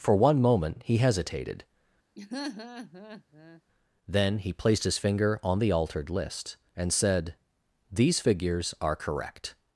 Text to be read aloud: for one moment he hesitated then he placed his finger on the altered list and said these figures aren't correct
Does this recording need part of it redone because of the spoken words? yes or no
yes